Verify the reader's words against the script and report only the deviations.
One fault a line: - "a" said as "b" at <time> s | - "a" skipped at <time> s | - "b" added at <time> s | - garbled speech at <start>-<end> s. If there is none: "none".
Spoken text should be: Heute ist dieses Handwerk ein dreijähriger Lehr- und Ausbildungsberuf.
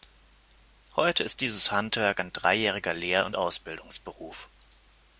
none